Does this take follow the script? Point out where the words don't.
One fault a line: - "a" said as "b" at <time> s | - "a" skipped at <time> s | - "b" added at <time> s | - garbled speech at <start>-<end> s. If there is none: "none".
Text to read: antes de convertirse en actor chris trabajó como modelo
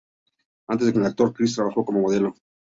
- "convertirse" skipped at 0.9 s